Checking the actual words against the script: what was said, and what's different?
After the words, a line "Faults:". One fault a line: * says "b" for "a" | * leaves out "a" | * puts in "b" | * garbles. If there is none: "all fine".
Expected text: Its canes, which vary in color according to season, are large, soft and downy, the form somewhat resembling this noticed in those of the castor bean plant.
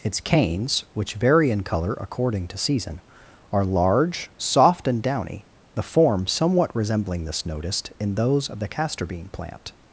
Its canes, which vary in color according to season, are large, soft and downy, the form somewhat resembling this noticed in those of the castor bean plant.
Faults:
all fine